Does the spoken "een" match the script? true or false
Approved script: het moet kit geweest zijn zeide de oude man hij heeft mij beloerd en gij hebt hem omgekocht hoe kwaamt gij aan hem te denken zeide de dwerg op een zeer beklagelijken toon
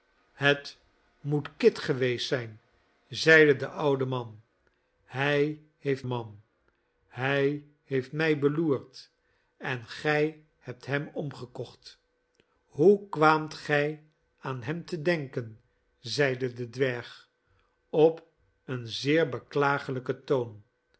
true